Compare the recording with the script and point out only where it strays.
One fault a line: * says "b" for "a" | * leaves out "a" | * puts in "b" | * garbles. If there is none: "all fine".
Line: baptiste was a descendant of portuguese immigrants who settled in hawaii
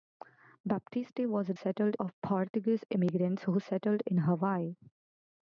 * says "settled" for "descendant"